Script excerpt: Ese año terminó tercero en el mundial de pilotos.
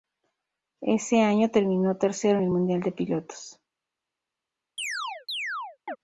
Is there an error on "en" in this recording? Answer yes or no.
yes